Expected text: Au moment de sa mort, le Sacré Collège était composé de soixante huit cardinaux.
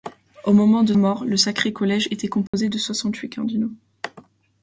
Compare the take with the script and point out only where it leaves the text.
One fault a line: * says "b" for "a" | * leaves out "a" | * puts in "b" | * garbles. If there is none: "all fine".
* leaves out "sa"